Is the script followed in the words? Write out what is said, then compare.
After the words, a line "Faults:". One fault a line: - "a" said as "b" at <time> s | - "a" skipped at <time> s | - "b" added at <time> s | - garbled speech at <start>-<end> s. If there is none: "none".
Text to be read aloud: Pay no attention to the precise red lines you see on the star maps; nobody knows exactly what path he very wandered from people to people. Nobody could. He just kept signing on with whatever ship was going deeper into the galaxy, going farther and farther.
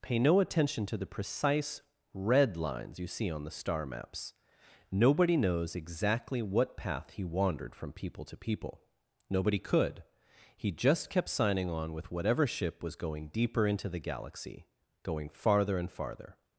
Pay no attention to the precise red lines you see on the star maps; nobody knows exactly what path he wandered from people to people. Nobody could. He just kept signing on with whatever ship was going deeper into the galaxy, going farther and farther.
Faults:
- "very" skipped at 7.2 s